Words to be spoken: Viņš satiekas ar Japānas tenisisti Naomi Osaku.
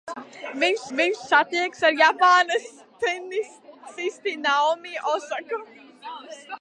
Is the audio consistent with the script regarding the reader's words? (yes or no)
no